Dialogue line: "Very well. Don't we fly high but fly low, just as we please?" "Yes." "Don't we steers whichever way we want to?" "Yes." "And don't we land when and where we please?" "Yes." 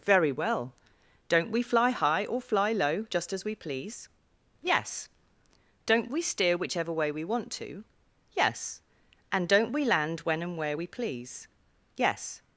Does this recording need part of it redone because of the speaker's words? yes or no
yes